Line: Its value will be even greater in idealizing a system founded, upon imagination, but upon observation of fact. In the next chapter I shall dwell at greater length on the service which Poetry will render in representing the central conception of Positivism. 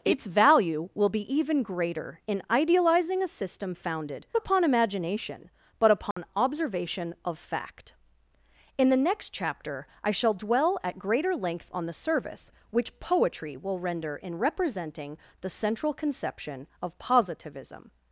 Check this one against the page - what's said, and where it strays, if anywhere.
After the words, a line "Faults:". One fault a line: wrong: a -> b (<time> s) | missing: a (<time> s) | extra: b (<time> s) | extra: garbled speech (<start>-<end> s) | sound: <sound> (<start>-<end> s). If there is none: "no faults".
Its value will be even greater in idealizing a system founded, upon imagination, but upon observation of fact. In the next chapter I shall dwell at greater length on the service which Poetry will render in representing the central conception of Positivism.
Faults:
sound: dropout (6.1-6.2 s)